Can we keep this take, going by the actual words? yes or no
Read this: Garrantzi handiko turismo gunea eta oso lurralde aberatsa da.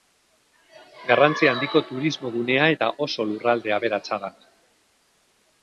yes